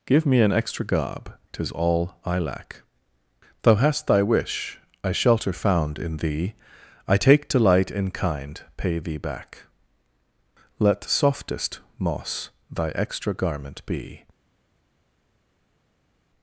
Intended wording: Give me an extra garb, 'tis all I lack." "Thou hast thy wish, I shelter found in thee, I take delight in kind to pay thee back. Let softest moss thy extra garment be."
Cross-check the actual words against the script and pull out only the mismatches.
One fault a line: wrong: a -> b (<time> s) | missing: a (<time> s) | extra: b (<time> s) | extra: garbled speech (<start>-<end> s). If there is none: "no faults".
missing: to (8.6 s)